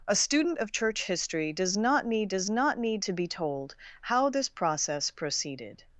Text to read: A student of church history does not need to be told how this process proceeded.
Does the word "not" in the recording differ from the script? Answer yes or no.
no